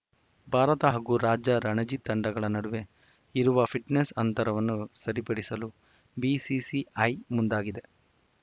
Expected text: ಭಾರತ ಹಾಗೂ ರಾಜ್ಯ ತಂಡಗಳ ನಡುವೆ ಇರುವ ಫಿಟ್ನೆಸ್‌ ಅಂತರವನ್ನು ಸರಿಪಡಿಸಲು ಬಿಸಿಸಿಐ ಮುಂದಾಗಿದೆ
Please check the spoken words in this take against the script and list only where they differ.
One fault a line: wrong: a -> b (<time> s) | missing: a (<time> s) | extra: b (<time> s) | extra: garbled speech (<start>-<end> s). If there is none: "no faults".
extra: ರಣಜಿ (1.7 s)